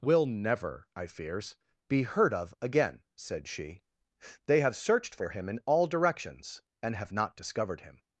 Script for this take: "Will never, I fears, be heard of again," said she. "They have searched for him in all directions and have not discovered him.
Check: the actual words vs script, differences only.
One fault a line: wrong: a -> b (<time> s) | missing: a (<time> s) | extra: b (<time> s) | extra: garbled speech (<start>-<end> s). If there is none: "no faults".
no faults